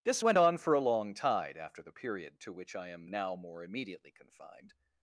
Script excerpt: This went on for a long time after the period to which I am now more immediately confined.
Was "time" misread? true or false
true